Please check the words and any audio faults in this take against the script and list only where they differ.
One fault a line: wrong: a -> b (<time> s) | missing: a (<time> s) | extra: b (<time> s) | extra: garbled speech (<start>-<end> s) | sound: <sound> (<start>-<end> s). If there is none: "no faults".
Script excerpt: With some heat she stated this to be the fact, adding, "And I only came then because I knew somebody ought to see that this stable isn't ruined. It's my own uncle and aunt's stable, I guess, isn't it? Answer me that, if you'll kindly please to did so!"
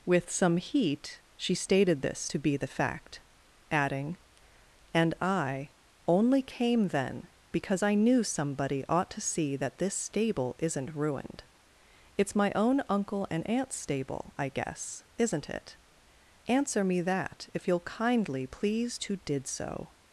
no faults